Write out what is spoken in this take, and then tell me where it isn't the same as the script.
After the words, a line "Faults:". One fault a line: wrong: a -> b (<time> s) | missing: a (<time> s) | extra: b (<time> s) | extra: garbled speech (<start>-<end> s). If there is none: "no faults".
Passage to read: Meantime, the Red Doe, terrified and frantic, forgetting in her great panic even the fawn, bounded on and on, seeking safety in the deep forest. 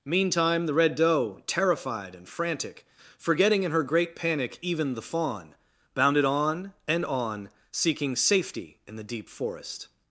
Meantime, the Red Doe, terrified and frantic, forgetting in her great panic even the fawn, bounded on and on, seeking safety in the deep forest.
Faults:
no faults